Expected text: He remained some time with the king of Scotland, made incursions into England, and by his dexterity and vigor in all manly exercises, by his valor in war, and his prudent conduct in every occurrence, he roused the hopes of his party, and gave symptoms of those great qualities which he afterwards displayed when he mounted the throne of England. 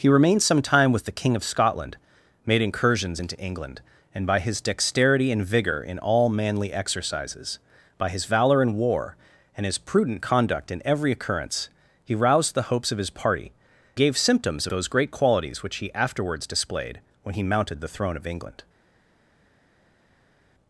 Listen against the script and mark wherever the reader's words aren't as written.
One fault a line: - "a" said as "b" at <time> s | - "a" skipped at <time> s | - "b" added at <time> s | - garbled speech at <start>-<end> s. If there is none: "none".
- "and" skipped at 13.5 s
- "of" skipped at 14.7 s